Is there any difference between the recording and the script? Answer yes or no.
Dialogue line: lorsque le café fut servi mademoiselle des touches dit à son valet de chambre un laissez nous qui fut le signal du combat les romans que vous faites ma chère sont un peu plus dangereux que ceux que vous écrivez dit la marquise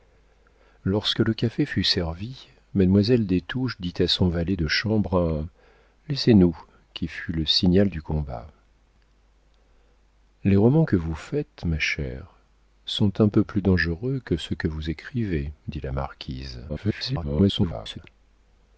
yes